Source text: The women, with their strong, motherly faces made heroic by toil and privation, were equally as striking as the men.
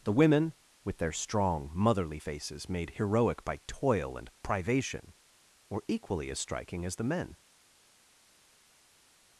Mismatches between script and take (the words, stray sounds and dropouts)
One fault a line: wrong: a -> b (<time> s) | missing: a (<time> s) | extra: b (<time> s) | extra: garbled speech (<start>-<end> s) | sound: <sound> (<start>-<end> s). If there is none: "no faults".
no faults